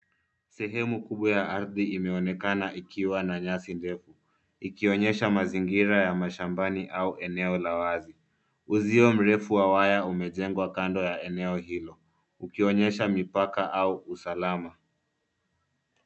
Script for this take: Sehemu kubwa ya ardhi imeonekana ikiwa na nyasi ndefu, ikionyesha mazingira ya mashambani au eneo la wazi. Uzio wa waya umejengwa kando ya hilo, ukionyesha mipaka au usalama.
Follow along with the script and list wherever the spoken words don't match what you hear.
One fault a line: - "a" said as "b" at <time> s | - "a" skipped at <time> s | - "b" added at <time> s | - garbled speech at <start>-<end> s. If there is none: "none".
- "mrefu" added at 9.1 s
- "eneo" added at 11.2 s